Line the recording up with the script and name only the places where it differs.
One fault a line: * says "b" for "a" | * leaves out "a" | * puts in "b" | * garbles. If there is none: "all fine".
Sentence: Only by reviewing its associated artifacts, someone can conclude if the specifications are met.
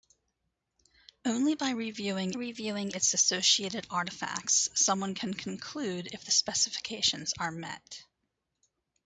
* puts in "reviewing"